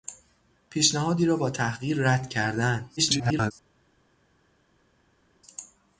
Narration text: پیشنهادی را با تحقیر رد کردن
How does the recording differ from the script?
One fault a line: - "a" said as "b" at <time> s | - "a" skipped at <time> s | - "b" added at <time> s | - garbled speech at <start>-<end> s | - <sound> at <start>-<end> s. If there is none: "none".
- garbled speech at 3.0-3.5 s